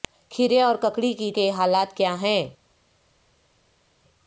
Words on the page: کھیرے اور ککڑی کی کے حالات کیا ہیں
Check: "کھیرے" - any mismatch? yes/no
no